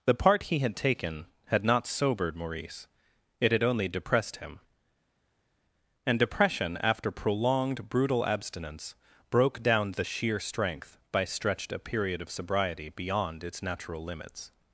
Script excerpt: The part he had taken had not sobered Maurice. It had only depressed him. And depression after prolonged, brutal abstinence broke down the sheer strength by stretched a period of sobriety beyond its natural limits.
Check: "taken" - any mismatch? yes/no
no